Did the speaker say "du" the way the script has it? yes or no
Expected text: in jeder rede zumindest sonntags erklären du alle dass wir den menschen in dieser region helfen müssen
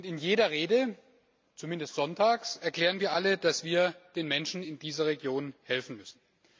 no